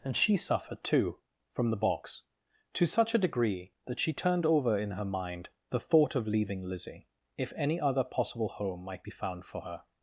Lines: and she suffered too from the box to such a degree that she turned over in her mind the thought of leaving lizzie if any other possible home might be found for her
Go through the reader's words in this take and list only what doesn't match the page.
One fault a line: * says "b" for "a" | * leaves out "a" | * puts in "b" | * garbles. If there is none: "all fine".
all fine